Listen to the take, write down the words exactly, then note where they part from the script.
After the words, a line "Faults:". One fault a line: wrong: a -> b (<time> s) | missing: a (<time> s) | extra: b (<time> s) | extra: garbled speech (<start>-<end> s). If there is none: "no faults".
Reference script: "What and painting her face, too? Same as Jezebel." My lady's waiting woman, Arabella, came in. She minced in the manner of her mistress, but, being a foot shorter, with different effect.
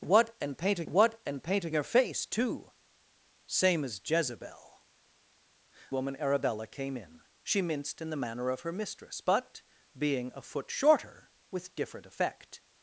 "What and painting what and painting her face, too? Same as Jezebel." Woman, Arabella, came in. She minced in the manner of her mistress, but, being a foot shorter, with different effect.
Faults:
extra: what and painting (0.9 s)
missing: My lady's waiting (4.9 s)